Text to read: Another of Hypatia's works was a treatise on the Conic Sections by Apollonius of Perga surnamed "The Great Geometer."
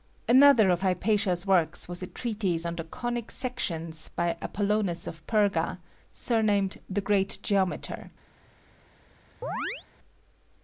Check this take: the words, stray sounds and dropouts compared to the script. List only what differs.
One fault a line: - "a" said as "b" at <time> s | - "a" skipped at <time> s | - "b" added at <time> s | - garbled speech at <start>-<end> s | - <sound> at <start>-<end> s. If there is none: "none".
- chirp at 9.4-9.9 s